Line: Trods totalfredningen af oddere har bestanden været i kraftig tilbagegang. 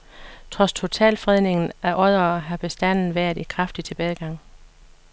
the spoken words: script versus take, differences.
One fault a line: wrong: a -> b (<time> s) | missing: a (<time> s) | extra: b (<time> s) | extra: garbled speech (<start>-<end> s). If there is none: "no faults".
no faults